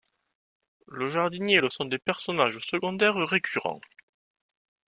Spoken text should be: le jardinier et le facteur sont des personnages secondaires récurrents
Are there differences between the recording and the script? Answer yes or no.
yes